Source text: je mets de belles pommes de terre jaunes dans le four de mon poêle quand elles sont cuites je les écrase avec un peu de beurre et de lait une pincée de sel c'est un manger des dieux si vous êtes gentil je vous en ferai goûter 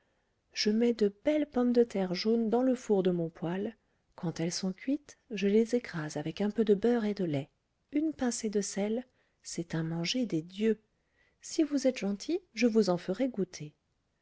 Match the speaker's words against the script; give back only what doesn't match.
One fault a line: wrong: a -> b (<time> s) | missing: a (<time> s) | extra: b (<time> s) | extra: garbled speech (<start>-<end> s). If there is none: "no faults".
no faults